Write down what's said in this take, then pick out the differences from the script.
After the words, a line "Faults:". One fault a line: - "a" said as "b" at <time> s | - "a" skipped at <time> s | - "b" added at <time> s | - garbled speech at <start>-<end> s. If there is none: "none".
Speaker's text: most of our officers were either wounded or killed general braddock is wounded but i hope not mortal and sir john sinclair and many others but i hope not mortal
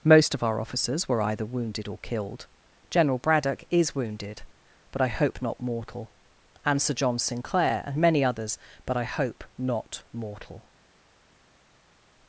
most of our officers were either wounded or killed general braddock is wounded but i hope not mortal and sir john sinclair and many others but i hope not mortal
Faults:
none